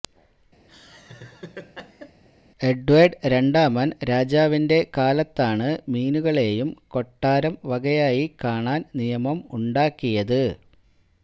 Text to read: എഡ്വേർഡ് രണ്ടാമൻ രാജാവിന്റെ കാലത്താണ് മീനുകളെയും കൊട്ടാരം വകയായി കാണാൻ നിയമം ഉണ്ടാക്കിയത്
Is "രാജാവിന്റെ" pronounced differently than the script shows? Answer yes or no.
no